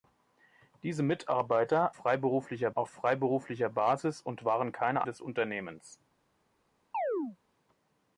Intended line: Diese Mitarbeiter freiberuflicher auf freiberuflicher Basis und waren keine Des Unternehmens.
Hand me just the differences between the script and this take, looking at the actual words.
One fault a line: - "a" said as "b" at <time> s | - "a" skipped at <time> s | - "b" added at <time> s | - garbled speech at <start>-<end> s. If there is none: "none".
none